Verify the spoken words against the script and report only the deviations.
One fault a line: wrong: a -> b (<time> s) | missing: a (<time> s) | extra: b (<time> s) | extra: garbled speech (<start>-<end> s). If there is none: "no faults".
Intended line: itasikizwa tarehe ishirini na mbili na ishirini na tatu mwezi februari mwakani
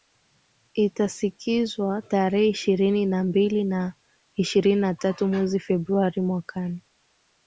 no faults